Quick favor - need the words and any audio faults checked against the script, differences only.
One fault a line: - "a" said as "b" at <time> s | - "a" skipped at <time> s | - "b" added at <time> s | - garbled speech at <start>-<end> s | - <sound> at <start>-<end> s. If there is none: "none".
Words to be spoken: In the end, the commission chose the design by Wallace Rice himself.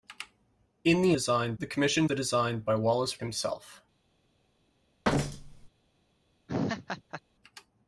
- "end" said as "design" at 1.1 s
- "chose" skipped at 2.1 s
- "Rice" skipped at 3.2 s
- thud at 5.0-5.7 s
- laugh at 6.5-7.2 s